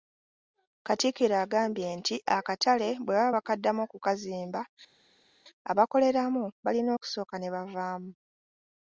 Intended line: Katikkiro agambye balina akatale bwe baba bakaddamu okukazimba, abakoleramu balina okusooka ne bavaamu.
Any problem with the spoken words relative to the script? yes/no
yes